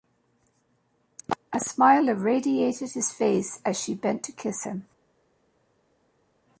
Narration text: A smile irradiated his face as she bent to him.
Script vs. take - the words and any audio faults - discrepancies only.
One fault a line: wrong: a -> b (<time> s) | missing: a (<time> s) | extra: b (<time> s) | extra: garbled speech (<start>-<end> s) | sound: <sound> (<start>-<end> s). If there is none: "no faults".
extra: kiss (4.3 s)